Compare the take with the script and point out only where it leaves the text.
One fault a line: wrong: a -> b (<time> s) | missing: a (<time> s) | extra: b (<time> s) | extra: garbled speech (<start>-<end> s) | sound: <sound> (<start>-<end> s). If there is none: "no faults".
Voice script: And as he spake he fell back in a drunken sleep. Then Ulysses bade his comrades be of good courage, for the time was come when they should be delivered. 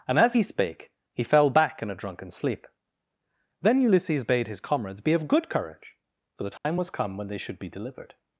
sound: dropout (6.6-6.7 s)